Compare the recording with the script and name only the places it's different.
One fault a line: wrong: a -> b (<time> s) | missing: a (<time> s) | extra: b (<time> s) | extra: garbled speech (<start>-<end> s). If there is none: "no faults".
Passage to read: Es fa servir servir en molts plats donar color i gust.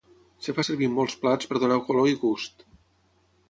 missing: servir (0.9 s)
extra: per (1.5 s)